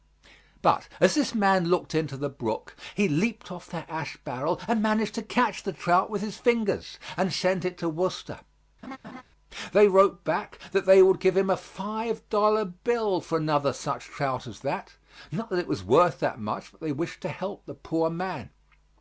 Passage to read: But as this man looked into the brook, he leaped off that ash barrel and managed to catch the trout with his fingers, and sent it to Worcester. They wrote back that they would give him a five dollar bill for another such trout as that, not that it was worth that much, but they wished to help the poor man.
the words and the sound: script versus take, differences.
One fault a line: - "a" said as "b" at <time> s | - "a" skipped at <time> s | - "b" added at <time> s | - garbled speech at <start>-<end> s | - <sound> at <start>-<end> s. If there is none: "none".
- laugh at 8.8-9.2 s